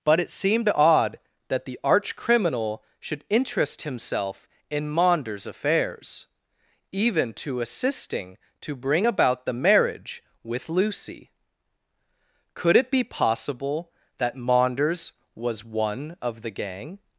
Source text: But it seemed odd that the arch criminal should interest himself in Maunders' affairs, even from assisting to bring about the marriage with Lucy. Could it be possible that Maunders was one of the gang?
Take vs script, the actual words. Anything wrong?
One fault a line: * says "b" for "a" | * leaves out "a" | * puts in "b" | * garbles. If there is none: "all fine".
* says "to" for "from"